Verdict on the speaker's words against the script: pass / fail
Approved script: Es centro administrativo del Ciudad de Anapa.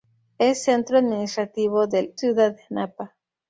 pass